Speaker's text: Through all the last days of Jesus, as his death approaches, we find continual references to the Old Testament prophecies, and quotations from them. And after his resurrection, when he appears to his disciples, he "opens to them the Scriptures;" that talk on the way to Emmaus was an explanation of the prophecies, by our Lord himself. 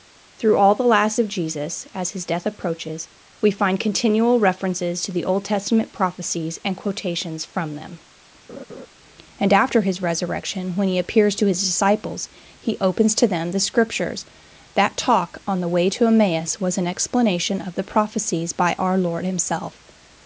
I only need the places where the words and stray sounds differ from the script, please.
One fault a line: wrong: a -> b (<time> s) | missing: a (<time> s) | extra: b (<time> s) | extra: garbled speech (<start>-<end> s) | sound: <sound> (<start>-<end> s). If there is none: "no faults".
missing: days (1.2 s)
sound: laugh (8.5-8.9 s)